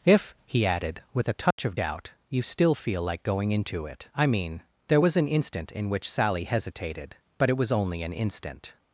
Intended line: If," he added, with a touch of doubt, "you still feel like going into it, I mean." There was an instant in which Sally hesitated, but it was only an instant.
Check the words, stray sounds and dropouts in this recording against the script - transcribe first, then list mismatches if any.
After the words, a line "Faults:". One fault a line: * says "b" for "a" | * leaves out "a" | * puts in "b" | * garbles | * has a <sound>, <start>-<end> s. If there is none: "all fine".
If," he added, with a touch of doubt, "you still feel like going into it, I mean." There was an instant in which Sally hesitated, but it was only an instant.
Faults:
* has a dropout, 1.5-1.6 s